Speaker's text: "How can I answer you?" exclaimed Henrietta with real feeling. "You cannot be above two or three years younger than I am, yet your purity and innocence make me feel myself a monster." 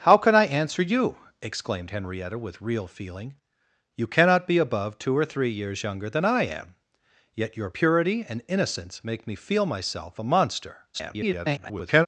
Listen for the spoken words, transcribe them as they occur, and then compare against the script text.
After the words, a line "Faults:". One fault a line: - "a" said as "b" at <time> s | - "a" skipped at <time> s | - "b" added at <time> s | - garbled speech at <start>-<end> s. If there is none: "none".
"How can I answer you?" exclaimed Henrietta with real feeling. "You cannot be above two or three years younger than I am, yet your purity and innocence make me feel myself a monster." [garbled]
Faults:
- garbled speech at 10.9-12.1 s